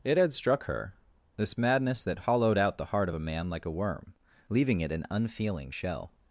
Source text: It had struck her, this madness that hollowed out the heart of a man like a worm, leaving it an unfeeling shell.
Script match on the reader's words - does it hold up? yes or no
yes